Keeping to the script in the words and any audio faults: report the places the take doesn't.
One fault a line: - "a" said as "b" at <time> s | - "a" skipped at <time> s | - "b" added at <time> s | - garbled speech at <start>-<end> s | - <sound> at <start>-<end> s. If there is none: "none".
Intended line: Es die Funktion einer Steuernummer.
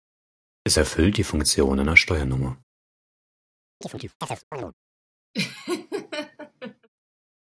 - "erfüllt" added at 0.8 s
- chirp at 3.8-4.7 s
- laugh at 5.3-6.9 s